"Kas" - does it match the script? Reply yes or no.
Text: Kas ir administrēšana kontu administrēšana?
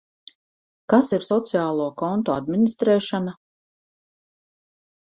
yes